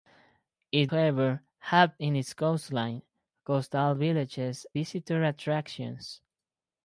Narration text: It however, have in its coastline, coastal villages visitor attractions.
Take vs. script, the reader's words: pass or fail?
pass